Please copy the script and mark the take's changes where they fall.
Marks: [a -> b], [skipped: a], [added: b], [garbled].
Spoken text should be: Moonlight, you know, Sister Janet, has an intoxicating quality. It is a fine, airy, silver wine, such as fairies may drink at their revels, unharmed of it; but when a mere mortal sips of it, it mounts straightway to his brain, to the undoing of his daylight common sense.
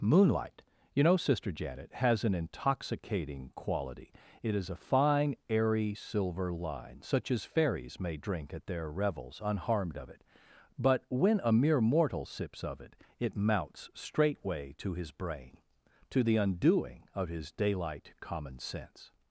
Moonlight, you know, Sister Janet, has an intoxicating quality. It is a fine, airy, silver [wine, -> line] such as fairies may drink at their revels, unharmed of it; but when a mere mortal sips of it, it mounts straightway to his brain, to the undoing of his daylight common sense.